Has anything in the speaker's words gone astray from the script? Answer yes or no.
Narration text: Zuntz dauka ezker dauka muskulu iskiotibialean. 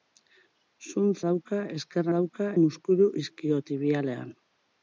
no